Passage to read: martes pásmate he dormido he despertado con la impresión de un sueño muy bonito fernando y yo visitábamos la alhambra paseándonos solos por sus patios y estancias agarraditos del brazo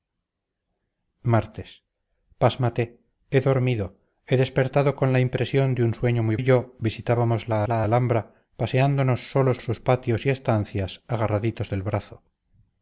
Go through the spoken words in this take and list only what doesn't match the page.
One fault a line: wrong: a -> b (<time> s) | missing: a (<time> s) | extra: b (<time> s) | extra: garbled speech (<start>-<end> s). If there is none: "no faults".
missing: bonito fernando (6.4 s)
extra: la (7.7 s)
missing: por (9.6 s)